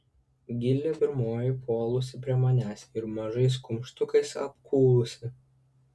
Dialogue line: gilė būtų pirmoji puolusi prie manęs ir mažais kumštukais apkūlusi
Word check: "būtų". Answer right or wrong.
wrong